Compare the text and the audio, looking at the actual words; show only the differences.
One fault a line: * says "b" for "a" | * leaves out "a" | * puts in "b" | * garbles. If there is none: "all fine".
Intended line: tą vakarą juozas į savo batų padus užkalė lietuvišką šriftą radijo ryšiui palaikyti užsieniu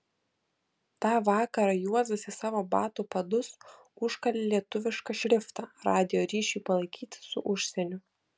* puts in "su"